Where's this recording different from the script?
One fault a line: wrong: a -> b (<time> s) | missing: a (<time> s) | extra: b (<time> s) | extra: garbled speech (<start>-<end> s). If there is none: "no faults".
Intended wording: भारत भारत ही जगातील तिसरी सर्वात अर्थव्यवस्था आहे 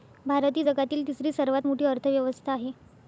missing: भारत (0.6 s)
extra: मोठी (1.7 s)